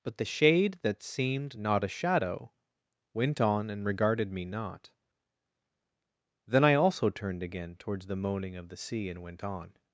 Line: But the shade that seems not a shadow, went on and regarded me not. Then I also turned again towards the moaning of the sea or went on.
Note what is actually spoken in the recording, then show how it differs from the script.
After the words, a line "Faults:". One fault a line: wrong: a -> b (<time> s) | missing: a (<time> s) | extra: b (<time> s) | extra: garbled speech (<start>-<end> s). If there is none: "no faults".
But the shade that seemed not a shadow, went on and regarded me not. Then I also turned again towards the moaning of the sea and went on.
Faults:
wrong: seems -> seemed (1.0 s)
wrong: or -> and (9.1 s)